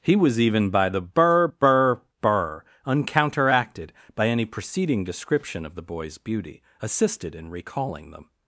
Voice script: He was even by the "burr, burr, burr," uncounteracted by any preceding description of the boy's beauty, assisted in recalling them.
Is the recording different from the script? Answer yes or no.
no